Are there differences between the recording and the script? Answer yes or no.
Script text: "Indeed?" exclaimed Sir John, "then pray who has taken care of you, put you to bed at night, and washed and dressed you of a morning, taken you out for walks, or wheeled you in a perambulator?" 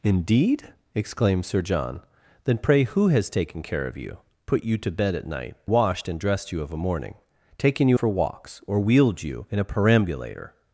yes